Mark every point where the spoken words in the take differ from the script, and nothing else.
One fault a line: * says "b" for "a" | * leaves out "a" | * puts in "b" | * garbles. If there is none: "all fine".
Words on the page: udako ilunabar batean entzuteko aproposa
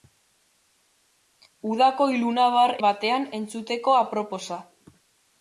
all fine